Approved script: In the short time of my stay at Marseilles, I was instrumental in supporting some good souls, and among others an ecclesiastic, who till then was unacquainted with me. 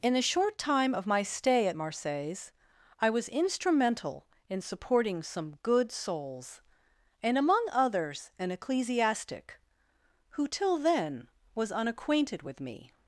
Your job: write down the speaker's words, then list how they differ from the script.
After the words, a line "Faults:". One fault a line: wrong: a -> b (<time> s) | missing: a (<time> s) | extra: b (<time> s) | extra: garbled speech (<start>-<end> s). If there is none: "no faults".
In the short time of my stay at Marseilles, I was instrumental in supporting some good souls, and among others an ecclesiastic, who till then was unacquainted with me.
Faults:
no faults